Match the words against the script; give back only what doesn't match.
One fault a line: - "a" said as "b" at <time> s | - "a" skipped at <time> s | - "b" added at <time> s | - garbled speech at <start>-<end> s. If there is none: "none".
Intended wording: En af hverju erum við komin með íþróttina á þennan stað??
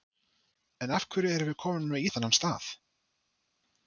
- "íþróttina" skipped at 2.1 s